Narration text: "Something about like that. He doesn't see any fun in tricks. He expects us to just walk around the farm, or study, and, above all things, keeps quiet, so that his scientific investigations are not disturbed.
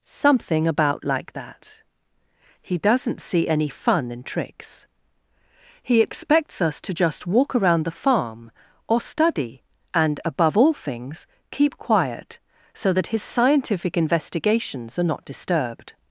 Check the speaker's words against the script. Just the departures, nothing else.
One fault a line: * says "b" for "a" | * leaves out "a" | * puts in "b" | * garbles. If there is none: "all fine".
* says "keep" for "keeps"